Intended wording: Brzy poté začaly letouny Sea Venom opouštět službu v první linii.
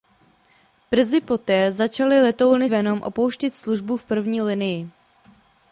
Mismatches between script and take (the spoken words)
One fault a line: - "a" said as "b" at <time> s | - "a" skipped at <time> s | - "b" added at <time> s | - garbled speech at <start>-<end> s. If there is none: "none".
- "Sea" skipped at 2.7 s